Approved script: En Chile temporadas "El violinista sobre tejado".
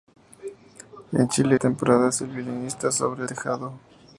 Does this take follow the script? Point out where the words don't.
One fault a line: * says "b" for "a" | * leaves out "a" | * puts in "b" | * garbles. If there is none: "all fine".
all fine